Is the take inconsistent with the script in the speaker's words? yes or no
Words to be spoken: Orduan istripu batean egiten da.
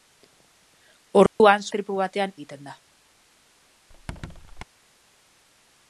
no